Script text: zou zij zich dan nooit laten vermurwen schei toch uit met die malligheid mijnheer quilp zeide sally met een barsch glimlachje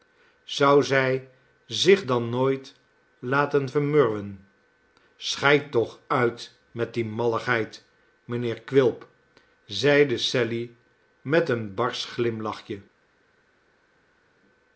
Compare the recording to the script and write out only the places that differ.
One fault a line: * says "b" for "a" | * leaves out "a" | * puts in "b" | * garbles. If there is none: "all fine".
all fine